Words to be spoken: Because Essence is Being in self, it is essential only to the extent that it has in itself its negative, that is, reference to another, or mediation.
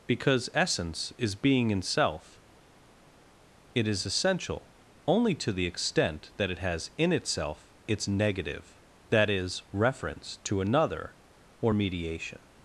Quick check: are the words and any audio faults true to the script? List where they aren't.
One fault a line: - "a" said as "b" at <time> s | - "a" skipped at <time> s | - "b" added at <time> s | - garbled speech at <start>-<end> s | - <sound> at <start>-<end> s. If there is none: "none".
none